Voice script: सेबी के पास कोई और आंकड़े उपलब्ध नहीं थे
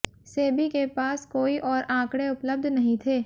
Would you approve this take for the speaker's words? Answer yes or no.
yes